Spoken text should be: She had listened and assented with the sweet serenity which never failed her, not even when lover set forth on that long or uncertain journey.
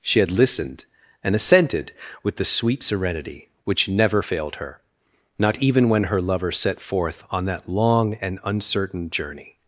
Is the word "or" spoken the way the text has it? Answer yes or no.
no